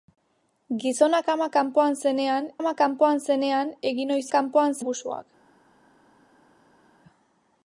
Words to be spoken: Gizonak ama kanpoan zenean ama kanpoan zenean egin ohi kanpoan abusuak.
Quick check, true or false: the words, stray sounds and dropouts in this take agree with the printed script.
true